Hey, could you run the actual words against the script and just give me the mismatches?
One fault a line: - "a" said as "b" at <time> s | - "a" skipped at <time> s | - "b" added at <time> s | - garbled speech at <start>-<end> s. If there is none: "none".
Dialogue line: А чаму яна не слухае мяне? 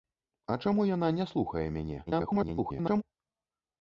- garbled speech at 2.1-3.0 s